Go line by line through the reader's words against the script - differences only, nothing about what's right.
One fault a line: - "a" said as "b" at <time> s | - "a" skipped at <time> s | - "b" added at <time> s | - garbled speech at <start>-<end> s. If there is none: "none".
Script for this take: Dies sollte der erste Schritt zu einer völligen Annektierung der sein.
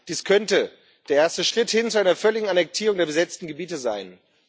- "sollte" said as "könnte" at 0.2 s
- "hin" added at 1.7 s
- "besetzten Gebiete" added at 3.1 s